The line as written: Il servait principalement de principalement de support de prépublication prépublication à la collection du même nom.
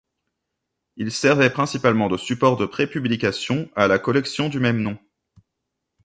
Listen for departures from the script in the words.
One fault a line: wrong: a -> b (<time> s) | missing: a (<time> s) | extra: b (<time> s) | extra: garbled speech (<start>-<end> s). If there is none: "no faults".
missing: principalement de (2.2 s)
missing: prépublication (3.7 s)